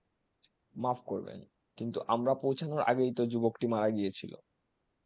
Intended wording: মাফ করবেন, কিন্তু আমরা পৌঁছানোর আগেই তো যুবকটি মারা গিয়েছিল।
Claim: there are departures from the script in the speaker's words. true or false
false